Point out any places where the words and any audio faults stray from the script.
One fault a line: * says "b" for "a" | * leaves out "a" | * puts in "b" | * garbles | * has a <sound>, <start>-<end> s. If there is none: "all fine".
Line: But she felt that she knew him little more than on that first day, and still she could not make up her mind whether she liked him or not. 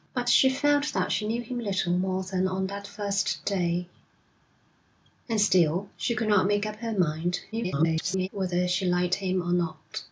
* garbles